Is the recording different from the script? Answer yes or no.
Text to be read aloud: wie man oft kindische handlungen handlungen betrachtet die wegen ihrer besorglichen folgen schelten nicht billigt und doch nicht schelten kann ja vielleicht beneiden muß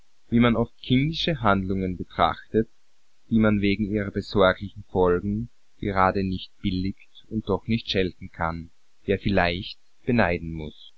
yes